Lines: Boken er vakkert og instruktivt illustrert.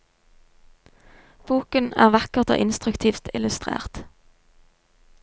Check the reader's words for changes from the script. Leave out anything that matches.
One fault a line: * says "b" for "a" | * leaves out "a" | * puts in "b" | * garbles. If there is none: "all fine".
all fine